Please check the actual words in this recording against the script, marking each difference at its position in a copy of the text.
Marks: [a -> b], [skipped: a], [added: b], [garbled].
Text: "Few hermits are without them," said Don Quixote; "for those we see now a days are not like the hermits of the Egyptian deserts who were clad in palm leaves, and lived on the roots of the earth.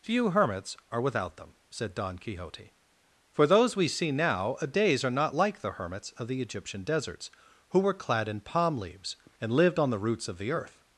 "Few hermits are without them," said Don Quixote; "for those we see now a days are not like the hermits of the Egyptian deserts who were clad in palm leaves, and lived on the roots of the earth.